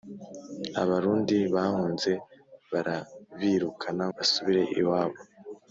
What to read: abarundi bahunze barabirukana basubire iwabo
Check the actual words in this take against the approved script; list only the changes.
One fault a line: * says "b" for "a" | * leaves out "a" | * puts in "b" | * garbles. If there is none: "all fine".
all fine